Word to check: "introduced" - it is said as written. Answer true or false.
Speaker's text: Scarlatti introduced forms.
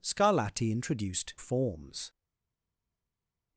true